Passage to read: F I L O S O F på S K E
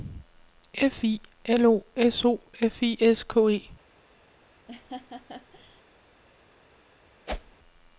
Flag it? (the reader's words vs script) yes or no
yes